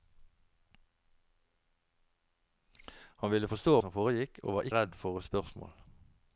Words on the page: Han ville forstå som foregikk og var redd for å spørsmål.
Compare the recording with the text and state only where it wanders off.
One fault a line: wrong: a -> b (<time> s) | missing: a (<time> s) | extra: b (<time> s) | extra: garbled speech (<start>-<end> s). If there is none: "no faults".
no faults